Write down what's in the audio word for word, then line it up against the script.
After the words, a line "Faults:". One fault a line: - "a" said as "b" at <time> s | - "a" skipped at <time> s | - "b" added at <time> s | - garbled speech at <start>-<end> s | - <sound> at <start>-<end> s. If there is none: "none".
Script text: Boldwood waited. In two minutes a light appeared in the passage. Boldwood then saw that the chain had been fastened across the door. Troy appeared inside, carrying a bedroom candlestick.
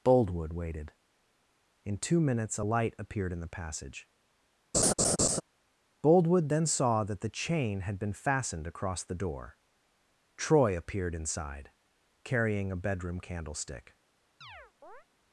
Boldwood waited. In two minutes a light appeared in the passage. Boldwood then saw that the chain had been fastened across the door. Troy appeared inside, carrying a bedroom candlestick.
Faults:
- laugh at 4.7-5.4 s
- chirp at 14.4-15.1 s